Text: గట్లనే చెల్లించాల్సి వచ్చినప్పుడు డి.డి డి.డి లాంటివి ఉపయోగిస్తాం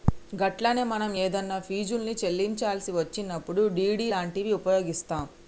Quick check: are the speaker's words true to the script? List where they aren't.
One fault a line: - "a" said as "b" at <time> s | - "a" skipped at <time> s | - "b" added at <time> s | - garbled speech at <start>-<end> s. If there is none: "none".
- "మనం ఏదన్నా ఫీజుల్ని" added at 0.9 s
- "డి.డి" skipped at 4.1 s